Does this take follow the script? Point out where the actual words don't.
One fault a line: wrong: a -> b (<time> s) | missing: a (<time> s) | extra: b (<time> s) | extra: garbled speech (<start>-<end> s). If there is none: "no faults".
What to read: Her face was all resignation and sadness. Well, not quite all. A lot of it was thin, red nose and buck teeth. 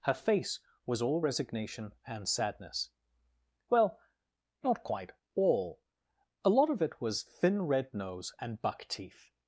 no faults